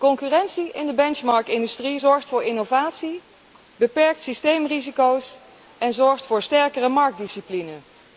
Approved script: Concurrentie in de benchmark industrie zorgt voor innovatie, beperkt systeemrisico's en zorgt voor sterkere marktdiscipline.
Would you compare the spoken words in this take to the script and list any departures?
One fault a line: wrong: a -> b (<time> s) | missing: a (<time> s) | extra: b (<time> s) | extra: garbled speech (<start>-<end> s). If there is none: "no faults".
no faults